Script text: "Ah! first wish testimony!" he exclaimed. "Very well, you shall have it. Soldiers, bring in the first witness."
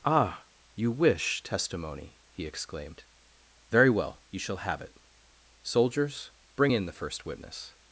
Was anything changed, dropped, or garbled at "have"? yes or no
no